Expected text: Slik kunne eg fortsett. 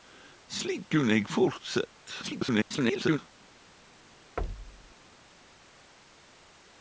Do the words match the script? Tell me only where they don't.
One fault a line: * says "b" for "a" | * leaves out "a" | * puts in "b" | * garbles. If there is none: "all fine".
* garbles